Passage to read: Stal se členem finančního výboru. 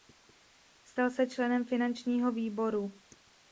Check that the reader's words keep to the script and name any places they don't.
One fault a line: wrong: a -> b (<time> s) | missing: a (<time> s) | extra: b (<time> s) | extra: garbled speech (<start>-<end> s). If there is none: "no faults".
no faults